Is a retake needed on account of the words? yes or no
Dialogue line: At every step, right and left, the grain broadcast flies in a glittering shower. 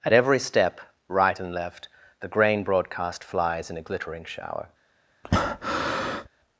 no